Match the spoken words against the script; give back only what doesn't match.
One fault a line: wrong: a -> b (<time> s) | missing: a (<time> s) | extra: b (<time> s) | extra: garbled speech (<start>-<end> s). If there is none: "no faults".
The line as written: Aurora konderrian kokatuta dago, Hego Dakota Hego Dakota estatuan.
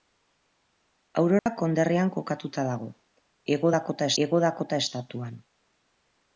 no faults